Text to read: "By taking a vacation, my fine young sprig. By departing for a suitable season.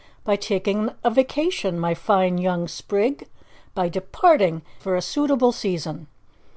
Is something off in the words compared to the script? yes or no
no